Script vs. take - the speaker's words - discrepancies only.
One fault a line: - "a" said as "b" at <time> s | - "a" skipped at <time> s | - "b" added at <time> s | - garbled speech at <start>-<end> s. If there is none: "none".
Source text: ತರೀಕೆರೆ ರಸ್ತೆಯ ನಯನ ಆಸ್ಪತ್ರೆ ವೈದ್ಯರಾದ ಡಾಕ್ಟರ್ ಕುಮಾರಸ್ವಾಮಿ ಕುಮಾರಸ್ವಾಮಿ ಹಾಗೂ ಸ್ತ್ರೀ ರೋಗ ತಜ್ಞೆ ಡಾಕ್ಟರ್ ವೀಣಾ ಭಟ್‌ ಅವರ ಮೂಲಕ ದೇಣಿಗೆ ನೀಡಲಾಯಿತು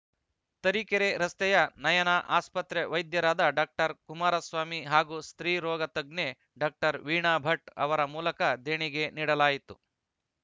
- "ಕುಮಾರಸ್ವಾಮಿ" skipped at 4.8 s